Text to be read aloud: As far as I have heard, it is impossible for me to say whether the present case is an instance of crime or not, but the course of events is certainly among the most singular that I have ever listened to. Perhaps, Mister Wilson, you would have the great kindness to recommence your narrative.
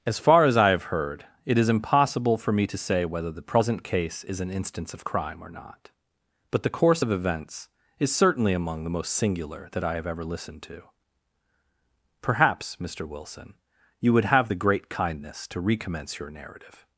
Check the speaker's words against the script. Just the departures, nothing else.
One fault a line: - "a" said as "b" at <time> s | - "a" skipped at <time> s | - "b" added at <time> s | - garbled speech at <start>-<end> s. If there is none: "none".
none